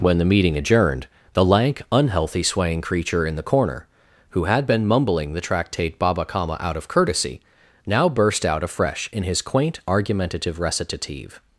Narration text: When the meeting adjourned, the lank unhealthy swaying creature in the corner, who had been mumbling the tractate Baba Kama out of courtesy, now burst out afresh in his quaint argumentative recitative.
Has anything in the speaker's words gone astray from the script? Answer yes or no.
no